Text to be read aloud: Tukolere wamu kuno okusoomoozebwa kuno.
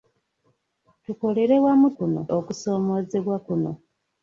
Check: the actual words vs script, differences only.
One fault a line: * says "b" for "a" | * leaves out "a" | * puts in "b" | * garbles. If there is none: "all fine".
all fine